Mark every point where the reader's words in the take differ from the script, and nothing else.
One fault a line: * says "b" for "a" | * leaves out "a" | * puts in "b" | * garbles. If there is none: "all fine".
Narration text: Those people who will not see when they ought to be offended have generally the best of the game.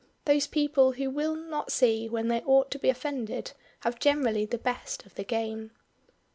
all fine